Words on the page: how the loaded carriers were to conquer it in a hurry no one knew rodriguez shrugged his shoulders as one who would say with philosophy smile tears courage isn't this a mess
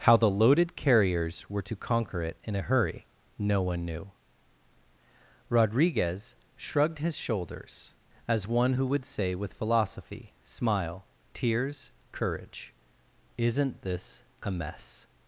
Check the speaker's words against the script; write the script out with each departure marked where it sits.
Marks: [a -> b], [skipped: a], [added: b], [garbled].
how the loaded carriers were to conquer it in a hurry no one knew rodriguez shrugged his shoulders as one who would say with philosophy smile tears courage isn't this a mess